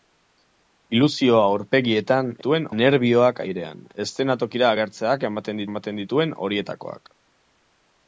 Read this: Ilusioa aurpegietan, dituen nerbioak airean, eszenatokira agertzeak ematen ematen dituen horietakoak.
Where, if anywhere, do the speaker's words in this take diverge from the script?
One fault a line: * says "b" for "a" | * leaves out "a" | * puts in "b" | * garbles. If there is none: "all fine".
all fine